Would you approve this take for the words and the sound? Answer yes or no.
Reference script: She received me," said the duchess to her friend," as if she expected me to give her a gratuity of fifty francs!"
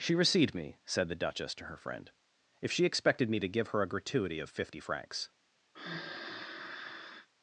no